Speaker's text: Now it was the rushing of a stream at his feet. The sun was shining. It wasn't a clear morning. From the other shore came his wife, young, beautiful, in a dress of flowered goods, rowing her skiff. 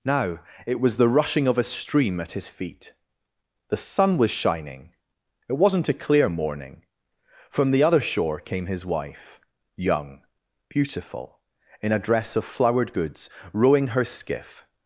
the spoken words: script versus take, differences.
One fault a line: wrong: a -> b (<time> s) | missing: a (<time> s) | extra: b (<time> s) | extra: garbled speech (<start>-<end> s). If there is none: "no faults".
no faults